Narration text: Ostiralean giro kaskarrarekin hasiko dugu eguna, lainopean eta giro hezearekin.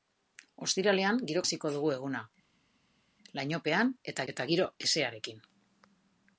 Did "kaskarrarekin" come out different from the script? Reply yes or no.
yes